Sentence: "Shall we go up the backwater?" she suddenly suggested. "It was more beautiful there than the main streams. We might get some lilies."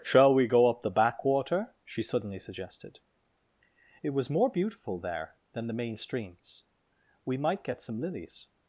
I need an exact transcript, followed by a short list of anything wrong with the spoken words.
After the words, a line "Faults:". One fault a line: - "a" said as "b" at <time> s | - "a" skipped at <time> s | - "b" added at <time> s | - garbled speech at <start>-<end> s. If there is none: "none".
"Shall we go up the backwater?" she suddenly suggested. "It was more beautiful there than the main streams. We might get some lilies."
Faults:
none